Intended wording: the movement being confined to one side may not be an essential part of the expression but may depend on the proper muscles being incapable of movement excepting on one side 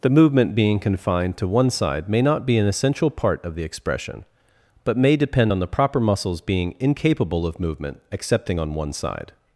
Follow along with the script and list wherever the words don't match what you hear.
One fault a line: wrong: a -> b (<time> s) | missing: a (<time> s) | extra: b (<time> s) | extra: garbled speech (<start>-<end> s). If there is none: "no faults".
no faults